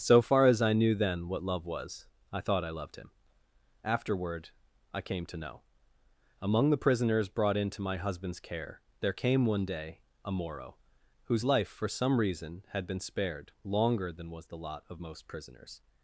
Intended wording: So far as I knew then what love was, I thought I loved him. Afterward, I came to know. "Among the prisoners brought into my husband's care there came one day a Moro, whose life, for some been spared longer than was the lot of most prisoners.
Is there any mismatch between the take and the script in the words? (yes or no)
yes